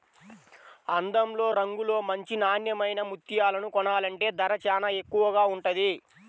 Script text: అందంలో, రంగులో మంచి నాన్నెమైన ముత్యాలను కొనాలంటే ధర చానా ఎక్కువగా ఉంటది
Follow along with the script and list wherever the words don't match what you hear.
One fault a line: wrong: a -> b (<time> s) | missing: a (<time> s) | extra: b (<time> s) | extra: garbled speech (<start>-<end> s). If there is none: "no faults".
no faults